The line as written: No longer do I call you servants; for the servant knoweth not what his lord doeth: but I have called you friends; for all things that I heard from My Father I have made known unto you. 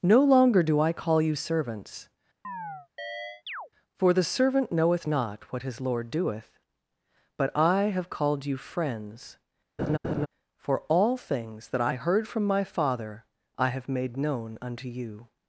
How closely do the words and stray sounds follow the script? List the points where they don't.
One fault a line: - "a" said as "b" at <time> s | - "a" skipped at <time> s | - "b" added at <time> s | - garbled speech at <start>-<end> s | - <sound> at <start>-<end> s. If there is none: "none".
- chirp at 2.4-3.7 s
- laugh at 9.8-10.3 s